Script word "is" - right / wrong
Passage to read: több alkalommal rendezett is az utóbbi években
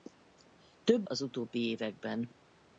wrong